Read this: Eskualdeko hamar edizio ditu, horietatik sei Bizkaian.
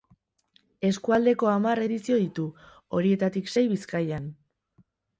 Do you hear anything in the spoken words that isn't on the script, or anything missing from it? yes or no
no